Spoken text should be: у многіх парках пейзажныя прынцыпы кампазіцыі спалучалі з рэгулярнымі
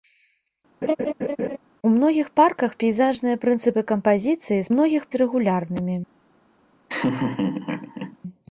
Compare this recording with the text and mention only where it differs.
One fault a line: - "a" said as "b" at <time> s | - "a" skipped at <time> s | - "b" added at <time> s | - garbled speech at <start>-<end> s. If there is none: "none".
- "спалучалі" said as "многіх" at 4.7 s